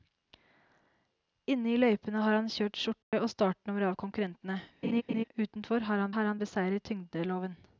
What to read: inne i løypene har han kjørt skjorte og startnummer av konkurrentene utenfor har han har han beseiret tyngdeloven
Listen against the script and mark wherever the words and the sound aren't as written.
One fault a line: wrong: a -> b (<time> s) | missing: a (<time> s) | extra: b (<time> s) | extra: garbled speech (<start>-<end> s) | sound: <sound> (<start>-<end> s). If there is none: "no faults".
sound: dropout (3.0-3.1 s)
sound: laugh (4.8-5.2 s)